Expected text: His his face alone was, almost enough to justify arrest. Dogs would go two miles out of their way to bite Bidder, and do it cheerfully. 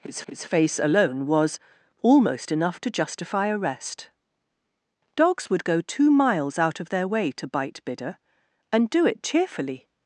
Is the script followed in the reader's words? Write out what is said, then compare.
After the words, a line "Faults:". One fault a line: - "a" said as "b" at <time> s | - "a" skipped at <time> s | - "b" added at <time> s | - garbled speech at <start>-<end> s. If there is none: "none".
His his face alone was, almost enough to justify arrest. Dogs would go two miles out of their way to bite Bidder, and do it cheerfully.
Faults:
none